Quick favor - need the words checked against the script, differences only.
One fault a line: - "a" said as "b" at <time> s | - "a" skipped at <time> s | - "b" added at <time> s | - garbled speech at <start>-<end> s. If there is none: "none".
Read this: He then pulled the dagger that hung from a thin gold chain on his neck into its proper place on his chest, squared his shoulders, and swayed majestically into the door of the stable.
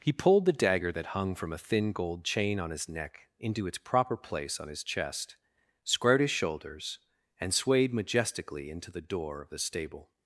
- "then" skipped at 0.1 s